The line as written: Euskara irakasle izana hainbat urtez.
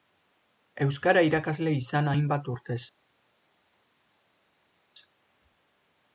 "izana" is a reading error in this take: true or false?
false